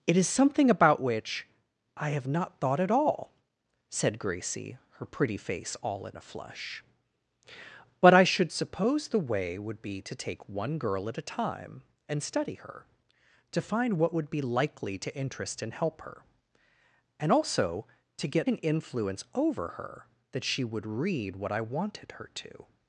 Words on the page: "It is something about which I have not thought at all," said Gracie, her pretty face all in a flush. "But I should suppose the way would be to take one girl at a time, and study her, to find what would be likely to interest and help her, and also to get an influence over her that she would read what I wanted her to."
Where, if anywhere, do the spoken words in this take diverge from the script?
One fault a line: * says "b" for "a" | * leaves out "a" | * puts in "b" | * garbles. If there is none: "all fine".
all fine